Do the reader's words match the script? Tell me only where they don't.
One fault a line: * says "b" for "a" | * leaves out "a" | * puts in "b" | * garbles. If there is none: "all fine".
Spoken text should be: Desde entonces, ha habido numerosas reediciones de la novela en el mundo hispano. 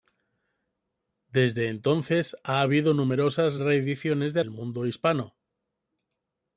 * leaves out "la novela en"